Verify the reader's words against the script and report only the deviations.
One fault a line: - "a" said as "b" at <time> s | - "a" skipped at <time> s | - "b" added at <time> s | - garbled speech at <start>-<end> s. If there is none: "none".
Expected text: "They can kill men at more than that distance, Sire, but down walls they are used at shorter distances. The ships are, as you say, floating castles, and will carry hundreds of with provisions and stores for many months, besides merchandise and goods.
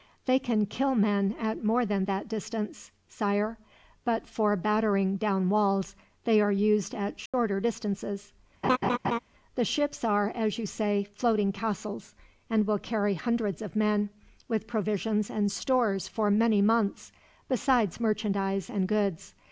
- "for battering" added at 4.2 s
- "men" added at 13.7 s